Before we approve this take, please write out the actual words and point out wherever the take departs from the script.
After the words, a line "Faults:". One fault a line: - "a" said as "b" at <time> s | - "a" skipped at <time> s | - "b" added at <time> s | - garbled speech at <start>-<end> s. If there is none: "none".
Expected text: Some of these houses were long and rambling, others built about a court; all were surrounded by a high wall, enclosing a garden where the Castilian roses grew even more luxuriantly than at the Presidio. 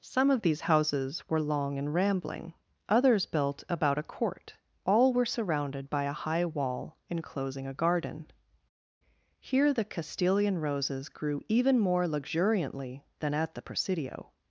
Some of these houses were long and rambling, others built about a court; all were surrounded by a high wall, enclosing a garden here the Castilian roses grew even more luxuriantly than at the Presidio.
Faults:
- "where" said as "here" at 9.4 s